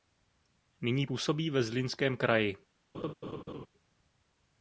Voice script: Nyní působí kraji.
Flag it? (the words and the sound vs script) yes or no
yes